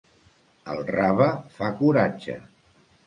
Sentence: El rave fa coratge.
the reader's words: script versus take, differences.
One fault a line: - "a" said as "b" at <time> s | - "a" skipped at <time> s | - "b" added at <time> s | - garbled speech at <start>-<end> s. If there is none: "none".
none